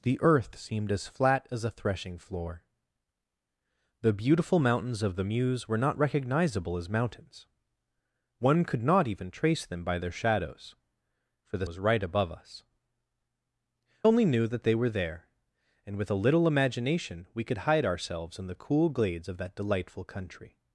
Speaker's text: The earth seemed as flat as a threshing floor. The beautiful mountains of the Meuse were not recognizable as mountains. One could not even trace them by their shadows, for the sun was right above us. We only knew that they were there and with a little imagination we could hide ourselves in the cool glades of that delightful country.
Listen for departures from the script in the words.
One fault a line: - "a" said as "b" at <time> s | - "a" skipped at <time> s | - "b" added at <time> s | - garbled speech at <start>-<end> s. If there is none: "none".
- "sun" skipped at 11.7 s
- "We" skipped at 12.6 s